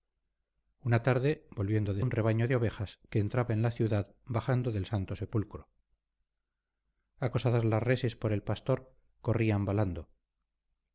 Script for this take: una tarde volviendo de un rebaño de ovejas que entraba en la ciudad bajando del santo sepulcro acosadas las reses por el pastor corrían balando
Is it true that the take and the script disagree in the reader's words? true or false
false